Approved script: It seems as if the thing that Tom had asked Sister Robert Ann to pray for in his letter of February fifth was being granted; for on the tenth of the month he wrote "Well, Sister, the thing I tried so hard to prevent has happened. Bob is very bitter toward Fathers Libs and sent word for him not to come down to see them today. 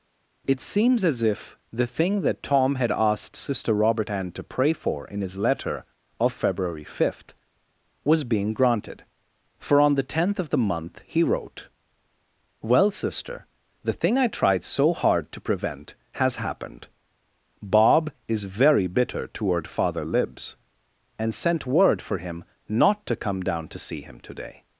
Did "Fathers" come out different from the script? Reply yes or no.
yes